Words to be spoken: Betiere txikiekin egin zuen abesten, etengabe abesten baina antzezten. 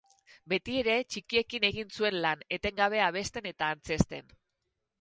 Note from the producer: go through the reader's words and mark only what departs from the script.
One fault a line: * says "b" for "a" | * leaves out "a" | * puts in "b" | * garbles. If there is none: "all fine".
* says "lan" for "abesten"
* says "eta" for "baina"